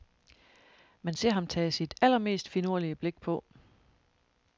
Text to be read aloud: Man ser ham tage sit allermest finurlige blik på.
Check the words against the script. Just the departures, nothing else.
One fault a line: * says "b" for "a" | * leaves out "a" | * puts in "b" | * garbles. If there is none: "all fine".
all fine